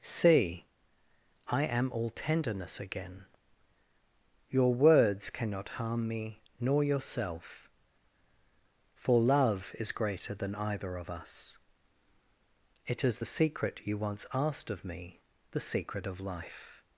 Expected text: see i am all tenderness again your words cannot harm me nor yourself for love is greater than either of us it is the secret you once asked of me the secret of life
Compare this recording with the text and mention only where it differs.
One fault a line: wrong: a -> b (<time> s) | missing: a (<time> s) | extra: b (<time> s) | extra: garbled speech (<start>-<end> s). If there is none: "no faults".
no faults